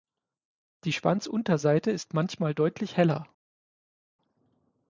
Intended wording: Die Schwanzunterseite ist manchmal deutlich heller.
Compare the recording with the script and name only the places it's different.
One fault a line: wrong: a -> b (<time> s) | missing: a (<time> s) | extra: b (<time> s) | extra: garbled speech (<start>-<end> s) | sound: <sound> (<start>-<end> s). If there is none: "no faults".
no faults